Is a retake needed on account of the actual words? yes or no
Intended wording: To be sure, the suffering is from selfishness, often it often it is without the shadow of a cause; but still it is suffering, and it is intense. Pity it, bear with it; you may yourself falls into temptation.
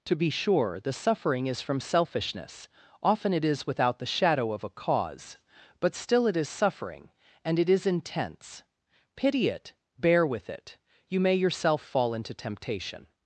yes